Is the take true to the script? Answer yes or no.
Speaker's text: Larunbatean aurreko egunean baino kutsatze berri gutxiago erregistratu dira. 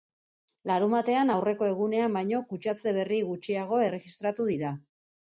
yes